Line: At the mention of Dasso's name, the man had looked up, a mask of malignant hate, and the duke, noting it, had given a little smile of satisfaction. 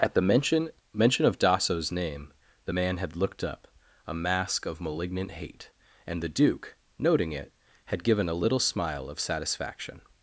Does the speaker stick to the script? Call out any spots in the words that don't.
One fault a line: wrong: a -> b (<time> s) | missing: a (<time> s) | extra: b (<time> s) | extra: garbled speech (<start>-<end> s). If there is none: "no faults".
extra: mention (0.9 s)